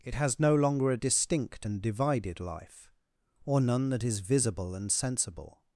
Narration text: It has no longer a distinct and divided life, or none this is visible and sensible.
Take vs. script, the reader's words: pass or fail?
fail